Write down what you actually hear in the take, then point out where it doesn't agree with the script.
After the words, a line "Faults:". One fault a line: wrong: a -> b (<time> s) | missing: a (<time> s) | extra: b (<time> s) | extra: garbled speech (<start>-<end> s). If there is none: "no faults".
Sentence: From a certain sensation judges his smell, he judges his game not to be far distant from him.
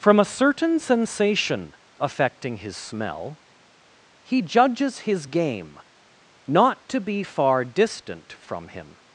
From a certain sensation affecting his smell, he judges his game not to be far distant from him.
Faults:
wrong: judges -> affecting (2.0 s)